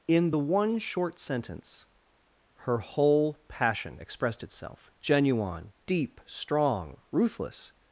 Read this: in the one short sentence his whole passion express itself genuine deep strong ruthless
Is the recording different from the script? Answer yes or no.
yes